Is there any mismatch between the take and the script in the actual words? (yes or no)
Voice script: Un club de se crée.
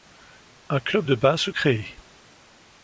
yes